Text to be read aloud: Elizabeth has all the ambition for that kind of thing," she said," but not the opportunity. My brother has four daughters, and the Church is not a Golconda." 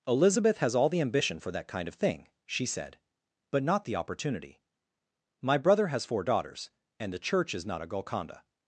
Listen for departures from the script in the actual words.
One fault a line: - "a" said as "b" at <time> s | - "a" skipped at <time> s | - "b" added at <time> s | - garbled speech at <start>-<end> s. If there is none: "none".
none